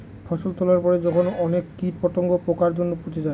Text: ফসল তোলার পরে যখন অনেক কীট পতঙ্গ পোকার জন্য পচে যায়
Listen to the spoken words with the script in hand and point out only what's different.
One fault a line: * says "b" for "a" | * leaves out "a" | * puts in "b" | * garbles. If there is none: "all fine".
all fine